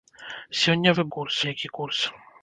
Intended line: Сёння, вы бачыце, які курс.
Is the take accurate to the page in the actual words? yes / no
no